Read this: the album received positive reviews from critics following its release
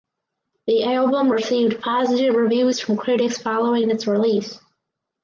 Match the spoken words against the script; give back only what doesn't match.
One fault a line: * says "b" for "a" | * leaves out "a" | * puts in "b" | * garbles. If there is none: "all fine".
all fine